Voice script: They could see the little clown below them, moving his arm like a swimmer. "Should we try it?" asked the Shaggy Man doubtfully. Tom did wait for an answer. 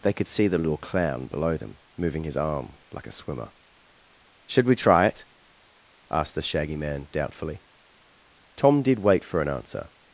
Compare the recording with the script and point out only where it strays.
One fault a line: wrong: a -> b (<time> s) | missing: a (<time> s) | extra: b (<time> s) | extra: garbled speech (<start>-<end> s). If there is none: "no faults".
no faults